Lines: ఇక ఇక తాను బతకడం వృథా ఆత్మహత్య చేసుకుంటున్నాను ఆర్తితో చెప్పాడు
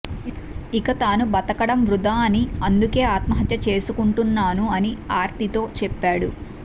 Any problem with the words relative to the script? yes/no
yes